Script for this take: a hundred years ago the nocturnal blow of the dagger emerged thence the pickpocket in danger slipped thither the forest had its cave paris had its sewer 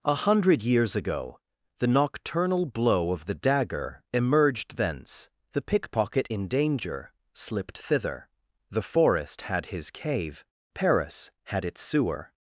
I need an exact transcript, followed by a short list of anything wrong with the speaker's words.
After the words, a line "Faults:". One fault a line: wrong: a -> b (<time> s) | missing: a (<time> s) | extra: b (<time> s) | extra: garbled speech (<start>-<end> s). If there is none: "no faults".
a hundred years ago the nocturnal blow of the dagger emerged thence the pickpocket in danger slipped thither the forest had his cave paris had its sewer
Faults:
wrong: its -> his (9.7 s)